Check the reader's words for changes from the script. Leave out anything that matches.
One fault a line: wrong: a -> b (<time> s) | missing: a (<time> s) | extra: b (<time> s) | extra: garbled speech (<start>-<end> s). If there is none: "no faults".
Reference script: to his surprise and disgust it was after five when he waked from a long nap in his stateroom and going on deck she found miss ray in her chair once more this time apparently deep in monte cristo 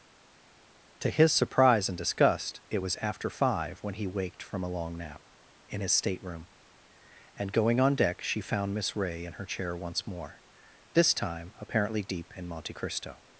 no faults